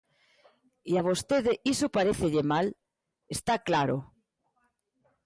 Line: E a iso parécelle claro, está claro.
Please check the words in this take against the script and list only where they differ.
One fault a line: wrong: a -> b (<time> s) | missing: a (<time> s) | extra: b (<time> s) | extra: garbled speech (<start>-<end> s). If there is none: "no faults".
extra: vostede (1.1 s)
wrong: claro -> mal (2.5 s)